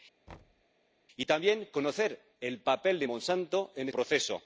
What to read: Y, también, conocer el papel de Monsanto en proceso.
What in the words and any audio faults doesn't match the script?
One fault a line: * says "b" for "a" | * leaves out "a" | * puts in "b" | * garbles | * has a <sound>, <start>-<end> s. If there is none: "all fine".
* has a thud, 0.3-0.6 s